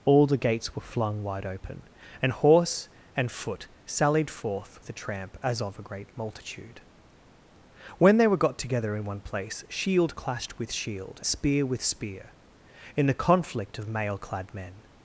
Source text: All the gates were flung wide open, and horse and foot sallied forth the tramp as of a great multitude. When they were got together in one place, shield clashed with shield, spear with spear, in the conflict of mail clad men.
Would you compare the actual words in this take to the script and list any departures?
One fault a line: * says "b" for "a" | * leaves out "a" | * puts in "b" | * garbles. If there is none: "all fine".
all fine